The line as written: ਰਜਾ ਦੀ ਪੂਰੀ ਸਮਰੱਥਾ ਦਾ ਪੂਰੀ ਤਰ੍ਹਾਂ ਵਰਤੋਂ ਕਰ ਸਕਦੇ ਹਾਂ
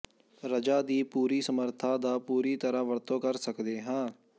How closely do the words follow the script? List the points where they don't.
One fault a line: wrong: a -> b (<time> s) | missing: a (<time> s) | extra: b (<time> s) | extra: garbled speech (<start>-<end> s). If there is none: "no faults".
no faults